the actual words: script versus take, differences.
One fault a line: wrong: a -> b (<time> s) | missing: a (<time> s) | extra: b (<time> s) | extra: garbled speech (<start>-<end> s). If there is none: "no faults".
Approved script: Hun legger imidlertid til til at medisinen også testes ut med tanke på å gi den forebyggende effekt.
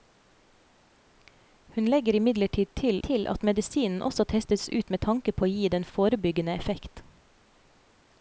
no faults